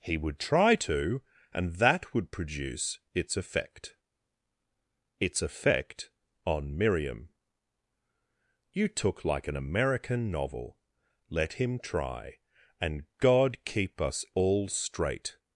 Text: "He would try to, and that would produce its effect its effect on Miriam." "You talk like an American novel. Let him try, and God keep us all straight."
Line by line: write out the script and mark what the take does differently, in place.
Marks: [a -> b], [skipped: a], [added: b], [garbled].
"He would try to, and that would produce its effect its effect on Miriam." "You [talk -> took] like an American novel. Let him try, and God keep us all straight."